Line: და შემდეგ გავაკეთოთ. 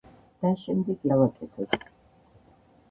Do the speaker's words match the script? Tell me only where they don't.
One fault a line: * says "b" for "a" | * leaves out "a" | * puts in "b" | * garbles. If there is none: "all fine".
all fine